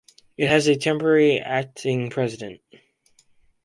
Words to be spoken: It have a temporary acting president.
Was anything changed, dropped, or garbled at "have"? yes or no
yes